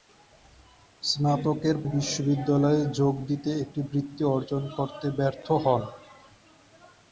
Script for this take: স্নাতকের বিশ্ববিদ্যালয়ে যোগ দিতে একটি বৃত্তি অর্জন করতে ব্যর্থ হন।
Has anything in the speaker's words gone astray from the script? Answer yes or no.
no